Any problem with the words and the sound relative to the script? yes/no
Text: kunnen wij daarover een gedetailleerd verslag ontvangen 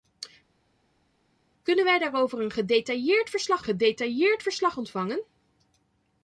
yes